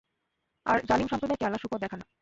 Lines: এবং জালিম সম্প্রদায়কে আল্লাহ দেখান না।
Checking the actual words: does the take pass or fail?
fail